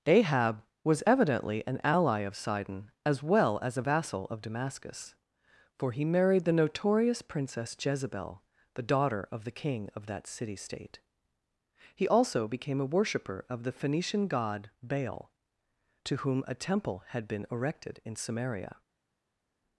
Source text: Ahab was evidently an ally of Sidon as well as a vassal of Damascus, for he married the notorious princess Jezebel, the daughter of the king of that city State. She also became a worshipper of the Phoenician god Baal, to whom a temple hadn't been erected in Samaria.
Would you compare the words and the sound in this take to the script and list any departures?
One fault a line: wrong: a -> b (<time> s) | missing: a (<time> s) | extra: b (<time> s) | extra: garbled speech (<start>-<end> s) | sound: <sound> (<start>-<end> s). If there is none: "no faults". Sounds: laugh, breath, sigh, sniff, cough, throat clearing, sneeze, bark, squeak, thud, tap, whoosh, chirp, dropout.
wrong: She -> He (12.0 s)
wrong: hadn't -> had (17.1 s)